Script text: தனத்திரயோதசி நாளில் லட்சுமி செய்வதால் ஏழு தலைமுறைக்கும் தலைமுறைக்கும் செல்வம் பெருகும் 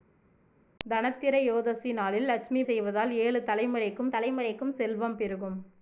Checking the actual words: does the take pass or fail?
pass